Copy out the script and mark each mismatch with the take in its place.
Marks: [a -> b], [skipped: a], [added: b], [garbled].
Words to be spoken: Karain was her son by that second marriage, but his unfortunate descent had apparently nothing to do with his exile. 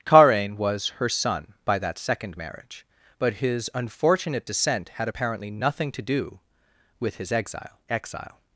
Karain was her son by that second marriage, but his unfortunate descent had apparently nothing to do with his exile. [added: exile]